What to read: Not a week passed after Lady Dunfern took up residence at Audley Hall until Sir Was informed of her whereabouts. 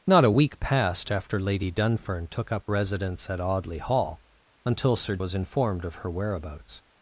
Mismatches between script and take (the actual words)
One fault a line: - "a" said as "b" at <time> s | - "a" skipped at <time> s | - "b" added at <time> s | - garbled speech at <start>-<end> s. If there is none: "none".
none